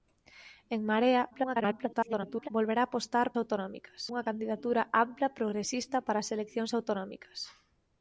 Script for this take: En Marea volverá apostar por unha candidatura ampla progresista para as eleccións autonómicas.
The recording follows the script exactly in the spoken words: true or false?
false